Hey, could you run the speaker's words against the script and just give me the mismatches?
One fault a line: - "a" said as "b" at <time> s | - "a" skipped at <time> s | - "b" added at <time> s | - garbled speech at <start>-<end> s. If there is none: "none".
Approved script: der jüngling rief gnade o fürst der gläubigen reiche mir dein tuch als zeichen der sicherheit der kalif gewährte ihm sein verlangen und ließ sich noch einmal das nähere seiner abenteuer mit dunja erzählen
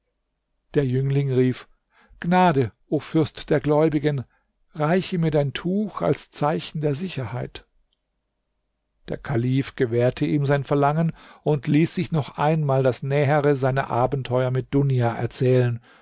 none